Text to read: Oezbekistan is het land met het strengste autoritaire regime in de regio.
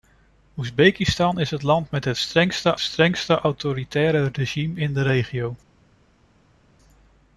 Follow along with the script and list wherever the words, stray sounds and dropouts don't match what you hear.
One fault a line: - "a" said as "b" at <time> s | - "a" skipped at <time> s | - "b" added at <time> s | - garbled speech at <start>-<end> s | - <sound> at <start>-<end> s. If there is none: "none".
- "strengste" added at 2.8 s